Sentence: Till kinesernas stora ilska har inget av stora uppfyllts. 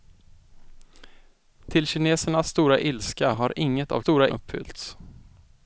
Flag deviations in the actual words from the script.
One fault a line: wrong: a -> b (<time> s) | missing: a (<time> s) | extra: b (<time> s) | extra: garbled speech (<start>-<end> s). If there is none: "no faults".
no faults